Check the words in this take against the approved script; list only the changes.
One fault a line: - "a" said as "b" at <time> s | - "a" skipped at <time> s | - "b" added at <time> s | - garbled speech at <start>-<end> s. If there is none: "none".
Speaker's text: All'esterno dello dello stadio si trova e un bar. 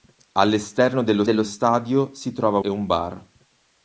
none